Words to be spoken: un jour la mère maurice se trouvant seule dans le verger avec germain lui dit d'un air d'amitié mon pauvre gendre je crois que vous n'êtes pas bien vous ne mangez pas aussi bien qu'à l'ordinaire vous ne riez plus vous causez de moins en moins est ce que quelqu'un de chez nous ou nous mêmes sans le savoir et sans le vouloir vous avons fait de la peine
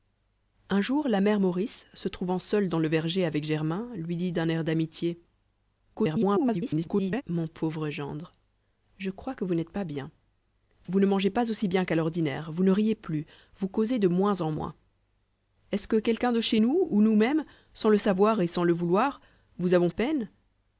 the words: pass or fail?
fail